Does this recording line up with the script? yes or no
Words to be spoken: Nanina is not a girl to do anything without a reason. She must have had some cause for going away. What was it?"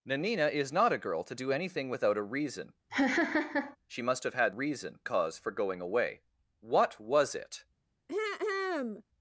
no